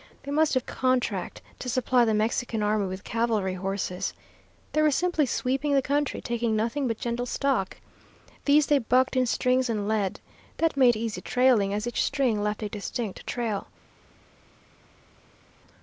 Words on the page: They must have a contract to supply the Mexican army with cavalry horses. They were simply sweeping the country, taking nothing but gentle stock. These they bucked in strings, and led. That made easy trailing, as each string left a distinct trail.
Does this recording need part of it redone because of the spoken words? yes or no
no